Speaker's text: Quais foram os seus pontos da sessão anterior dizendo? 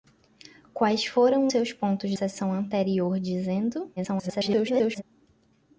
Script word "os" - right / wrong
wrong